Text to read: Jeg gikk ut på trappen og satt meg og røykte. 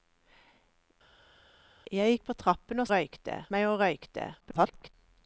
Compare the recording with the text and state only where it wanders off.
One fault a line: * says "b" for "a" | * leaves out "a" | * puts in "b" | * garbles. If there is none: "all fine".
* leaves out "gikk"
* says "røykte" for "satt"
* garbles